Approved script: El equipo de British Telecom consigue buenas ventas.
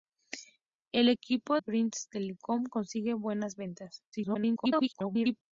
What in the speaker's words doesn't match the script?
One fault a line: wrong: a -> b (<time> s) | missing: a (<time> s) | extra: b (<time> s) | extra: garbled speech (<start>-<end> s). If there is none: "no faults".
missing: de (1.6 s)
extra: garbled speech (4.1-5.4 s)